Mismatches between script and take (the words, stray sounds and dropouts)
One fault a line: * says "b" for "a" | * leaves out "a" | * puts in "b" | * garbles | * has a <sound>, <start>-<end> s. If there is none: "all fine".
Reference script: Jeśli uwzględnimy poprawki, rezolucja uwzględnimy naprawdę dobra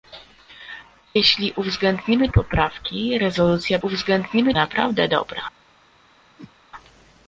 * has a whoosh, 6.4-6.5 s